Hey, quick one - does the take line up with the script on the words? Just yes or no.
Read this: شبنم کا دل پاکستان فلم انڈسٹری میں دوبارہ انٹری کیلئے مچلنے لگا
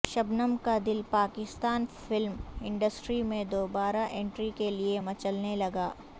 yes